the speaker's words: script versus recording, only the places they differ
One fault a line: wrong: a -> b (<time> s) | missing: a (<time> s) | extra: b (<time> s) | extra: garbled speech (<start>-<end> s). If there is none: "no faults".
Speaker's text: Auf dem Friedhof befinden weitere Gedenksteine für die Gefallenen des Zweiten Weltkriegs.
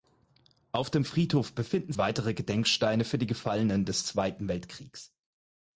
no faults